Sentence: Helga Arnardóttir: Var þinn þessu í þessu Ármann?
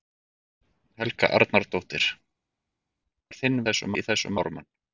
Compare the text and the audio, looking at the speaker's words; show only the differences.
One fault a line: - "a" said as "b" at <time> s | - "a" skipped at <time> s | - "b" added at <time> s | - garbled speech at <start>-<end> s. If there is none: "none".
none